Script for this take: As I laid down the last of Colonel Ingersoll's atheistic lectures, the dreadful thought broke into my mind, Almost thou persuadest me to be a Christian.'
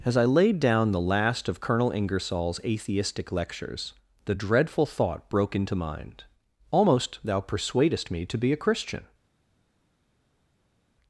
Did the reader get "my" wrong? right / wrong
wrong